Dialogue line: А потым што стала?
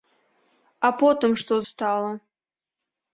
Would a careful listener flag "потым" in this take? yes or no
no